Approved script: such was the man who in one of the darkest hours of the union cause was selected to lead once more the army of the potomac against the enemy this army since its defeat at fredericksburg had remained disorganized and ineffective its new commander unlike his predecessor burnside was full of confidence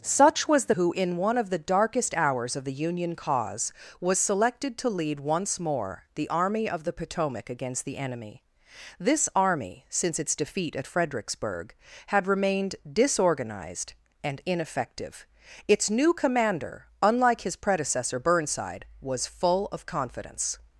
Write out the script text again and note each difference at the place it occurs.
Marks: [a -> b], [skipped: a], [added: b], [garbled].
such was the [skipped: man] who in one of the darkest hours of the union cause was selected to lead once more the army of the potomac against the enemy this army since its defeat at fredericksburg had remained disorganized and ineffective its new commander unlike his predecessor burnside was full of confidence